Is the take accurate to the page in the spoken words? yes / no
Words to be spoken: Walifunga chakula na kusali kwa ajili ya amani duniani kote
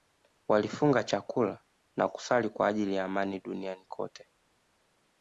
yes